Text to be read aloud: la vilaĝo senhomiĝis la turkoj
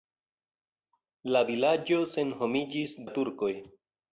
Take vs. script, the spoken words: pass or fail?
pass